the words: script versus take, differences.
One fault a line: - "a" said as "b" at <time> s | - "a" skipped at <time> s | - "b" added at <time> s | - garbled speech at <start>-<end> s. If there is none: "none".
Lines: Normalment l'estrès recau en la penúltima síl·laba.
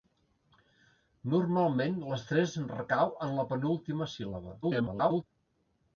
- garbled speech at 4.6-5.2 s